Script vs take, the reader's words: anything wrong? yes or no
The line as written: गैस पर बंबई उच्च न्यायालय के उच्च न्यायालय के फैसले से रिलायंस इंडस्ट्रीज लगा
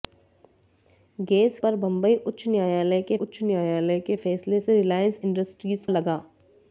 no